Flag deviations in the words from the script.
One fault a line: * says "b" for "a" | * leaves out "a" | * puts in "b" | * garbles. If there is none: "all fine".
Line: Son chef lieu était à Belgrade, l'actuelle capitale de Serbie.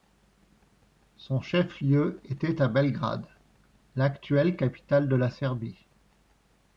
* puts in "la"